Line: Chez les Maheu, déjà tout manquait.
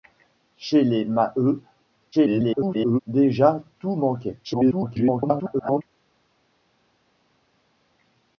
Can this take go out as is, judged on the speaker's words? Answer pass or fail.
fail